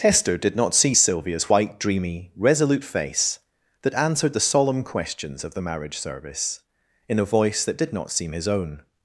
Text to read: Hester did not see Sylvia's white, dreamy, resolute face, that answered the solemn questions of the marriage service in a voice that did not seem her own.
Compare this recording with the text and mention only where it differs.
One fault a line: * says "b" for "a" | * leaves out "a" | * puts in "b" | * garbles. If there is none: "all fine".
* says "his" for "her"